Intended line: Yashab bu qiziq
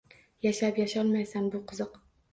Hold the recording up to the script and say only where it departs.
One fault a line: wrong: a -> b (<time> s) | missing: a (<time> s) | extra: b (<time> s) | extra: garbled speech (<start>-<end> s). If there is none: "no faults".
extra: yasholmaysan (0.8 s)